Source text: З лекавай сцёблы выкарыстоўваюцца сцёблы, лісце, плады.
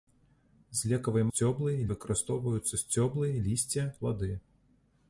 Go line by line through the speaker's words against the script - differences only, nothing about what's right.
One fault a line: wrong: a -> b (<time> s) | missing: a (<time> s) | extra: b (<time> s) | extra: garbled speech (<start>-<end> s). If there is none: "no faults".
no faults